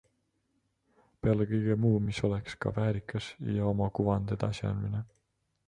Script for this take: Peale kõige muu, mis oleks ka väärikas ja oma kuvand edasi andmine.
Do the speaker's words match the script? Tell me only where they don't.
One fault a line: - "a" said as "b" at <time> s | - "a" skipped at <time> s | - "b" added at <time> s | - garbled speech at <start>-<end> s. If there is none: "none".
none